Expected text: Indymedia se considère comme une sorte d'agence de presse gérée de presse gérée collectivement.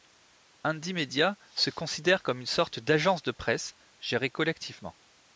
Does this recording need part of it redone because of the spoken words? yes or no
yes